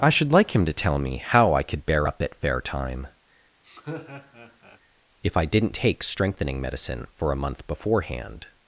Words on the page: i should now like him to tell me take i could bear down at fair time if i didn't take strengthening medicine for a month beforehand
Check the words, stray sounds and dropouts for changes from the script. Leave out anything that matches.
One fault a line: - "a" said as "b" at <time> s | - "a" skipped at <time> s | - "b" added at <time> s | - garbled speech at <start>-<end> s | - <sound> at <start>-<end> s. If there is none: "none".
- "now" skipped at 0.3 s
- "take" said as "how" at 1.2 s
- "down" said as "up" at 2.0 s
- laugh at 3.6-4.8 s